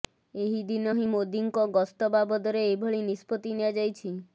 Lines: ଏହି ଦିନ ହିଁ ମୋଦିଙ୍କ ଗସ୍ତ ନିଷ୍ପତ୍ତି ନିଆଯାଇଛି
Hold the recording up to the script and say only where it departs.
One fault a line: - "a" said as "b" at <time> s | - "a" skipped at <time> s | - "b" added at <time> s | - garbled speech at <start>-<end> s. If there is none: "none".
- "ବାବଦରେ ଏଭଳି" added at 2.2 s